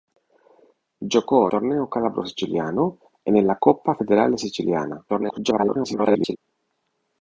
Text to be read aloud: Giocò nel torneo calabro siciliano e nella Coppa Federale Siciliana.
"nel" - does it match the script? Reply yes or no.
no